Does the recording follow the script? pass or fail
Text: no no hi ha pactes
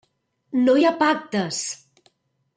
fail